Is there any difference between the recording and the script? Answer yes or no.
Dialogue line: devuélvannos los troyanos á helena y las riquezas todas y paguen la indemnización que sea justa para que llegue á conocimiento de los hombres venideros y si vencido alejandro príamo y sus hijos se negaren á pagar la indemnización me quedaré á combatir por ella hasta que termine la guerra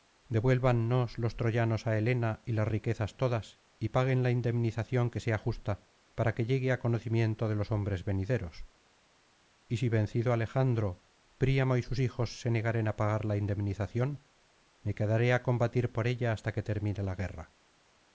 no